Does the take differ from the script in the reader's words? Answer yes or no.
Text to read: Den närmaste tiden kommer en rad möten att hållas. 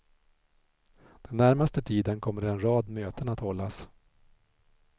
no